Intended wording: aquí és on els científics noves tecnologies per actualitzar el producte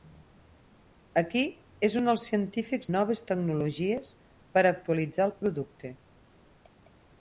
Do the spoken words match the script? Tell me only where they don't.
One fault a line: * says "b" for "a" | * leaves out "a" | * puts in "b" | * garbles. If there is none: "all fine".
all fine